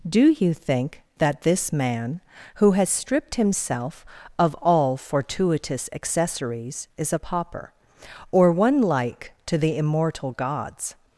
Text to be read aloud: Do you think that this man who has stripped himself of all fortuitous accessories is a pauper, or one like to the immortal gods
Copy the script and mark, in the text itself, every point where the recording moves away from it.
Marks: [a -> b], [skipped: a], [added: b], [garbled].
Do you think that this man who has stripped himself of all fortuitous accessories is a pauper, or one like to the immortal gods